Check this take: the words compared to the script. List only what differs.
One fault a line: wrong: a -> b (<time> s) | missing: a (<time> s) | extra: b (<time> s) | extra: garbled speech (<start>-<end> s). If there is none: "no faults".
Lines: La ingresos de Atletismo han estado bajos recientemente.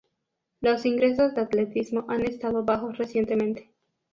wrong: La -> Los (0.6 s)